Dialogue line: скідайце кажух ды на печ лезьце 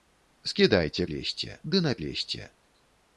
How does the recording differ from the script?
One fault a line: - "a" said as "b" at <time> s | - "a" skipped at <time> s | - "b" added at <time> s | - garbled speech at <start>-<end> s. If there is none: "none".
- "кажух" said as "лезьце" at 1.1 s
- "печ" skipped at 2.0 s